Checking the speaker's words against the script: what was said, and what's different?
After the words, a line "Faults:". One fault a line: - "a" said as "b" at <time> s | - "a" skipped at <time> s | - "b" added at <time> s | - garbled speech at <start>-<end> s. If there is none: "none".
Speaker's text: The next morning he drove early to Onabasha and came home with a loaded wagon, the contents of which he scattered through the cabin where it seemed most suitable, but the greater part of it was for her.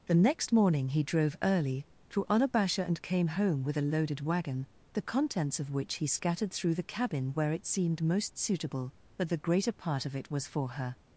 The next morning he drove early to Onabasha and came home with a loaded wagon, the contents of which he scattered through the cabin where it seemed most suitable, but the greater part of it was for her.
Faults:
none